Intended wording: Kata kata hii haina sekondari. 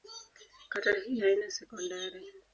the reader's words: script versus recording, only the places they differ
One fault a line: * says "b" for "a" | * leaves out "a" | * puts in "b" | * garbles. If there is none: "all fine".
* leaves out "kata"